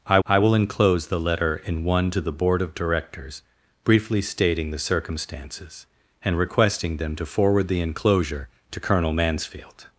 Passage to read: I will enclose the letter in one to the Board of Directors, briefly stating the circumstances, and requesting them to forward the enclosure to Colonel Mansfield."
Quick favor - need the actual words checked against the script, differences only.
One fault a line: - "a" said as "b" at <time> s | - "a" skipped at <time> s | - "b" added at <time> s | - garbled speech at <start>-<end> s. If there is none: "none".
- "I" added at 0.3 s